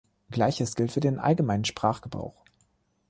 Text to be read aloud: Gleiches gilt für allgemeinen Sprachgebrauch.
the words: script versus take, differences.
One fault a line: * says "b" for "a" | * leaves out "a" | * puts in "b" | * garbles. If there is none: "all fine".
* puts in "den"